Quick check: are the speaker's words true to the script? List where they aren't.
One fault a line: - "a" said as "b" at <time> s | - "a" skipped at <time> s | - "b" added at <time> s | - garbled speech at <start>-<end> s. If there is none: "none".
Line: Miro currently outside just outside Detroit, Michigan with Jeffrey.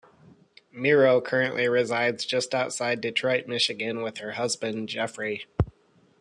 - "outside" said as "resides" at 1.7 s
- "her husband" added at 4.2 s